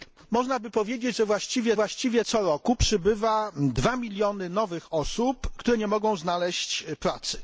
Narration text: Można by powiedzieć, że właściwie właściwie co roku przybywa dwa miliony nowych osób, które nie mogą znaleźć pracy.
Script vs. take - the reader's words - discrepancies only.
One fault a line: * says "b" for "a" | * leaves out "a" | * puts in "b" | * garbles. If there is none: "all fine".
all fine